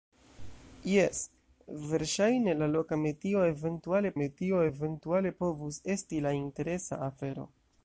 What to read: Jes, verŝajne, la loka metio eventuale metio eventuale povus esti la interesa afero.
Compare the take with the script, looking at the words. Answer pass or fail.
pass